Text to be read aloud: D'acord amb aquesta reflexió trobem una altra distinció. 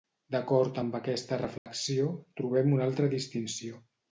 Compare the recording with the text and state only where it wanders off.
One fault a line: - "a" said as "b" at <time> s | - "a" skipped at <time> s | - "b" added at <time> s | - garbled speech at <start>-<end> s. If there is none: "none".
none